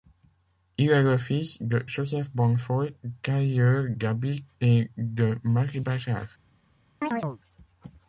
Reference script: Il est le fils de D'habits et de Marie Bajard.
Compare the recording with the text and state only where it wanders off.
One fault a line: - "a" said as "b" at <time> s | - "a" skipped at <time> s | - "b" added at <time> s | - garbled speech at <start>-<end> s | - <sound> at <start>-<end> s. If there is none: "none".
- "Joseph Bonnefoy tailleur" added at 1.9 s
- chirp at 7.0-7.4 s